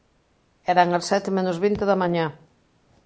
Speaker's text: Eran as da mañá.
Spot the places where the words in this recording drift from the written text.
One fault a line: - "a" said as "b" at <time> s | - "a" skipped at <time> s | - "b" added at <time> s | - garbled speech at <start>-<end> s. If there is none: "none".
- "sete menos vinte" added at 1.1 s